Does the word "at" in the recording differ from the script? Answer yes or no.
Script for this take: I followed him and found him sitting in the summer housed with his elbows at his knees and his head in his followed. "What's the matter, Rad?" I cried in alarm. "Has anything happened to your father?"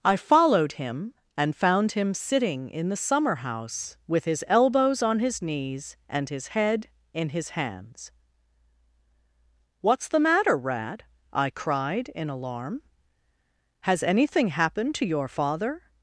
yes